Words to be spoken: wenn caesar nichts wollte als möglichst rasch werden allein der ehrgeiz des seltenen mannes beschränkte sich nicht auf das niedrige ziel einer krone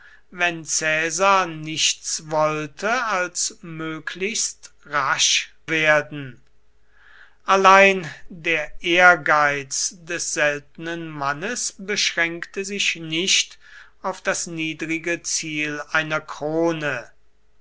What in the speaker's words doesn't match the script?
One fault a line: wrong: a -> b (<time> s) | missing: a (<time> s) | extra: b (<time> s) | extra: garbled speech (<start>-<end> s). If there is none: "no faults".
no faults